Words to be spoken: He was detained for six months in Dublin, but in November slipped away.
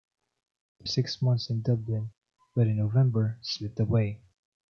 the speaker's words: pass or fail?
fail